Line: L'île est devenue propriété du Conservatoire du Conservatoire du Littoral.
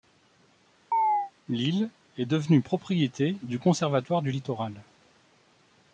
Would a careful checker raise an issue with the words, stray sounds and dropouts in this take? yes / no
yes